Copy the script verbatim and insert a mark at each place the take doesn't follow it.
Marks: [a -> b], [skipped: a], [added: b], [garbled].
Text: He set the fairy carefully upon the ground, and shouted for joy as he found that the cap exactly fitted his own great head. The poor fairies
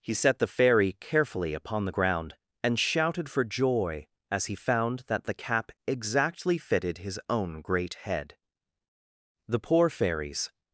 He set the fairy carefully upon the ground, and shouted for joy as he found that the cap exactly fitted his own great head. The poor fairies